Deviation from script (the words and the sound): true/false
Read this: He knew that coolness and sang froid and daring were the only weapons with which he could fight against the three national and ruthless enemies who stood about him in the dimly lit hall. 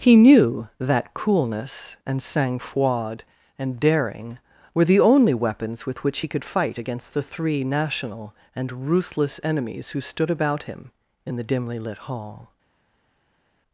false